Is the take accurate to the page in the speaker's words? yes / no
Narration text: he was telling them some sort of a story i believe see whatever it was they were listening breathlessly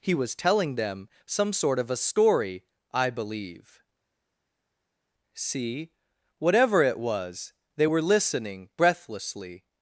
yes